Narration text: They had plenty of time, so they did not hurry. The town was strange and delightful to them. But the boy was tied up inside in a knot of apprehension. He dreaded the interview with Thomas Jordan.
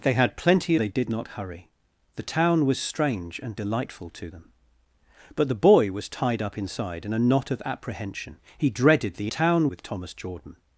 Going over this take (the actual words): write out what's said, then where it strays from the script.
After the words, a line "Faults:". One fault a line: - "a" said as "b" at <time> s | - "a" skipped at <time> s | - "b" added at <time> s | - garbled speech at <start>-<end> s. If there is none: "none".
They had plenty they did not hurry. The town was strange and delightful to them. But the boy was tied up inside in a knot of apprehension. He dreaded the town with Thomas Jordan.
Faults:
- "of time so" skipped at 0.8 s
- "interview" said as "town" at 9.3 s